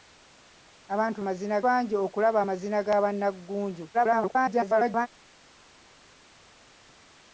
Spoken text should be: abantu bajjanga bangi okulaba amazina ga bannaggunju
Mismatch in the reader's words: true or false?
true